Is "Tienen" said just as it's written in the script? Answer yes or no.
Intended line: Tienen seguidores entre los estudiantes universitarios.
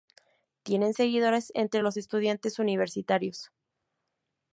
yes